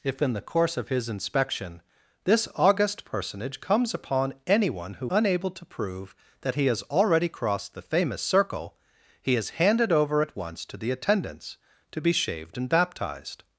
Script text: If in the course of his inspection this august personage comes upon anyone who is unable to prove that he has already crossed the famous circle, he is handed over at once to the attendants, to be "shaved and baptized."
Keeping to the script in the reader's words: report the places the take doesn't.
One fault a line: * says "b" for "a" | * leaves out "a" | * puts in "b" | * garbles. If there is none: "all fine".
* leaves out "is"